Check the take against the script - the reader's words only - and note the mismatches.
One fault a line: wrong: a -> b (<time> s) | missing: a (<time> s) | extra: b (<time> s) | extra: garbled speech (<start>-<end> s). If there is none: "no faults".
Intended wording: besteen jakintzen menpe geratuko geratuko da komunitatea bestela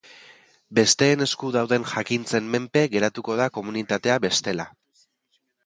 extra: esku dauden (1.2 s)
missing: geratuko (3.4 s)